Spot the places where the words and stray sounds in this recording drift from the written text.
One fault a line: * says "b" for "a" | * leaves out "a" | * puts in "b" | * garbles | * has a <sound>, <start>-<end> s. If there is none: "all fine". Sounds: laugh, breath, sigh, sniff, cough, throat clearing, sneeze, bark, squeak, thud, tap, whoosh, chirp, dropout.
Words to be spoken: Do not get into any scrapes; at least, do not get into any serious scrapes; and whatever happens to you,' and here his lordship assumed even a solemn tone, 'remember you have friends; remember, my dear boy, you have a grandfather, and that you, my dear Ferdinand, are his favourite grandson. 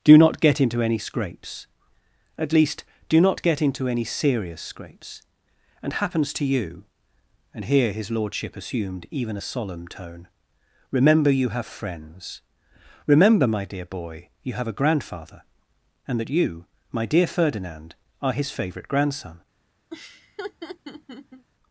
* leaves out "whatever"
* has a laugh, 19.9-21.5 s